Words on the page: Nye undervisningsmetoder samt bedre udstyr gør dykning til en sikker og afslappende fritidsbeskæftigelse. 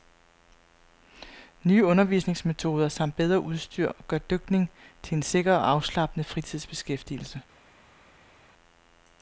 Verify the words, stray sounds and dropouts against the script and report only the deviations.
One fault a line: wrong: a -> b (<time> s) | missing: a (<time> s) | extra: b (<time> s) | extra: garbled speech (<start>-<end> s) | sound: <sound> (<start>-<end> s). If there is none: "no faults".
no faults